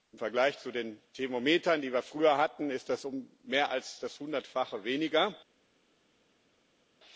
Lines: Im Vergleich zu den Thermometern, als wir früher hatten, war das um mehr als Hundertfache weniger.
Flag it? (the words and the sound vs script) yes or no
yes